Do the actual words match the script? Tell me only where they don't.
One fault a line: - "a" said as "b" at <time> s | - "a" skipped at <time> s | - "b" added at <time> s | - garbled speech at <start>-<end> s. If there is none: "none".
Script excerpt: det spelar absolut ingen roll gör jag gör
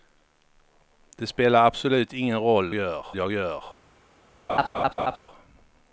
none